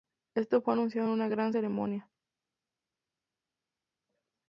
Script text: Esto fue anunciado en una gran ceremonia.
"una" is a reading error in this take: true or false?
false